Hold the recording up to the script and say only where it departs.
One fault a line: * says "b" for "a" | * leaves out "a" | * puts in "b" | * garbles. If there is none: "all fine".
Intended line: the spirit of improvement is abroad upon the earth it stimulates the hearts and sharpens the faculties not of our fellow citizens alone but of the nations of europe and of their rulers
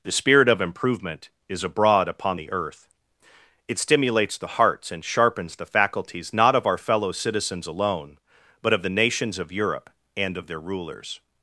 all fine